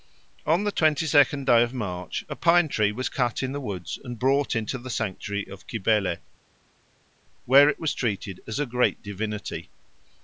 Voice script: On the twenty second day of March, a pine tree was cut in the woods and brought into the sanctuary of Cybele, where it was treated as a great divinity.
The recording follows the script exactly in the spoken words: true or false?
true